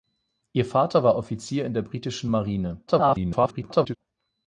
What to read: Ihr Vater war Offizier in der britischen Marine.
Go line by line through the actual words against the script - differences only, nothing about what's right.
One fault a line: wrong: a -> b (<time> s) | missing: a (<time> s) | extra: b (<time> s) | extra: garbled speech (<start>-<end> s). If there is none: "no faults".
extra: garbled speech (2.9-4.0 s)